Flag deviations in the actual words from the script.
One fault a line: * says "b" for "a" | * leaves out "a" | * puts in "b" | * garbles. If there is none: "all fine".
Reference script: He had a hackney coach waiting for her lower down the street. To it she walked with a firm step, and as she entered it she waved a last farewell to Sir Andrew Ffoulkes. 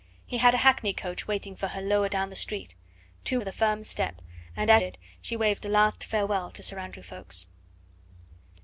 * leaves out "it she walked"
* leaves out "she entered"